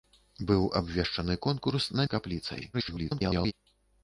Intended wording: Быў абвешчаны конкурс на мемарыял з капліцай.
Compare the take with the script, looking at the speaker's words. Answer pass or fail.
fail